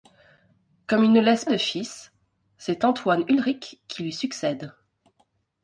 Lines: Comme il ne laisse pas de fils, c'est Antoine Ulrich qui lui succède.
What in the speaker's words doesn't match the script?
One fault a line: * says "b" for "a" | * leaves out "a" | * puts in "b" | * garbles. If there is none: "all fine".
* leaves out "pas"